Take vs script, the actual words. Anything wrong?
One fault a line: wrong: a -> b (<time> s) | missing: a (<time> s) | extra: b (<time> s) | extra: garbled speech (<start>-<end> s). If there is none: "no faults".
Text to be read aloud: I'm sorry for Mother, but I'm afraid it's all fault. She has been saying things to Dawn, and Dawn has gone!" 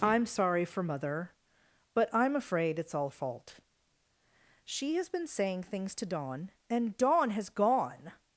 no faults